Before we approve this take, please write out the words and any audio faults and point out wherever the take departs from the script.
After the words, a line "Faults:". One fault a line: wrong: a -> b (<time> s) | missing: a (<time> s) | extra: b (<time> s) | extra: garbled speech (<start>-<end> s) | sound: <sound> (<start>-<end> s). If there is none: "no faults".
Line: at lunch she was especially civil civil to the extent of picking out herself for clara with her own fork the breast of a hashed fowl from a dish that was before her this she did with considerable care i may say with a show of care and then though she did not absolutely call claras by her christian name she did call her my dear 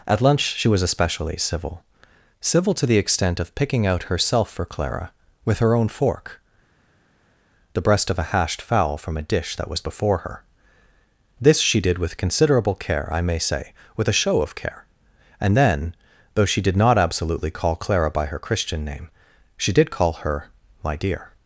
at lunch she was especially civil civil to the extent of picking out herself for clara with her own fork the breast of a hashed fowl from a dish that was before her this she did with considerable care i may say with a show of care and then though she did not absolutely call clara by her christian name she did call her my dear
Faults:
wrong: claras -> clara (17.7 s)